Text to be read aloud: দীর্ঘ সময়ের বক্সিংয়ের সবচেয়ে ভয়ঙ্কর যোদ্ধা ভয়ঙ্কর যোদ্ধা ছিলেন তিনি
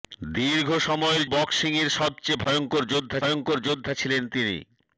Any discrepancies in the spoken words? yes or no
no